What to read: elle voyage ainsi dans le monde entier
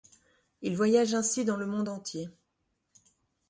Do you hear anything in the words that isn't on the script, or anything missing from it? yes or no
yes